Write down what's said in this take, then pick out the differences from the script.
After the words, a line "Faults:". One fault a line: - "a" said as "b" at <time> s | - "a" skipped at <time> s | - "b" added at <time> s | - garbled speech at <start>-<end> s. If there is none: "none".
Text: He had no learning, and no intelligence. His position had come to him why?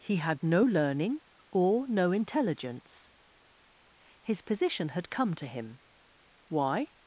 He had no learning, or no intelligence. His position had come to him why?
Faults:
- "and" said as "or" at 1.5 s